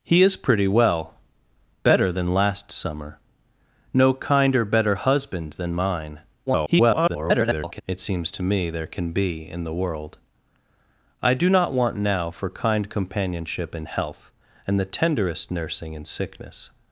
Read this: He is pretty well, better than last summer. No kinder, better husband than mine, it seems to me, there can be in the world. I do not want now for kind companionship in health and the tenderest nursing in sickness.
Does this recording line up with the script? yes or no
no